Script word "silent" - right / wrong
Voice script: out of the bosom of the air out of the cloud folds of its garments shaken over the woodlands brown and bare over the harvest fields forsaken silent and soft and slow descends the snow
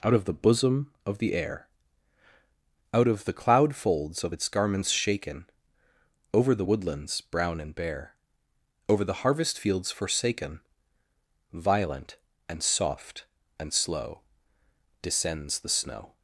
wrong